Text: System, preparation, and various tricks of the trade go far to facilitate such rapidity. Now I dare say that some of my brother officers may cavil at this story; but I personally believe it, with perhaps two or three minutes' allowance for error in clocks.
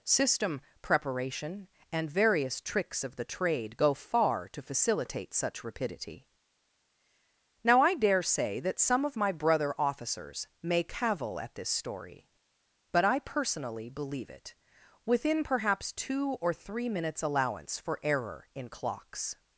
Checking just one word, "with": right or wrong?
wrong